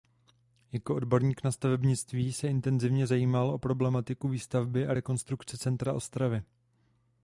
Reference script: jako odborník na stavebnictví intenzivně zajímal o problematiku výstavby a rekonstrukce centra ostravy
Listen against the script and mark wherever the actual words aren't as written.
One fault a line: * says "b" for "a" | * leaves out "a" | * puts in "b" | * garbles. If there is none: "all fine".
* puts in "se"